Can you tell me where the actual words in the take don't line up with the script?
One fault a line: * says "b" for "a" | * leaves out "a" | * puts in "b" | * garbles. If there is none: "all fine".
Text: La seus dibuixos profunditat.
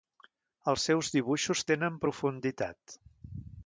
* says "Els" for "La"
* puts in "tenen"